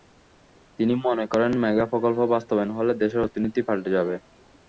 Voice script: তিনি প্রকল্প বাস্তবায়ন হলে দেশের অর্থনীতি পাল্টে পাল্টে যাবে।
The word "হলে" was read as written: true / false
true